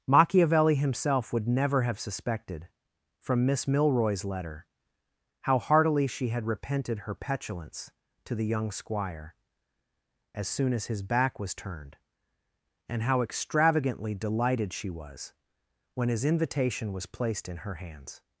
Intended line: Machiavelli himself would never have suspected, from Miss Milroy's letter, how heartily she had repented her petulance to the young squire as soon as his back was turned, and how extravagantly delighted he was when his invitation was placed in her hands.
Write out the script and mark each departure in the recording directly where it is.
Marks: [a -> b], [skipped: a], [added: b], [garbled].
Machiavelli himself would never have suspected, from Miss Milroy's letter, how heartily she had repented her petulance to the young squire as soon as his back was turned, and how extravagantly delighted [he -> she] was when his invitation was placed in her hands.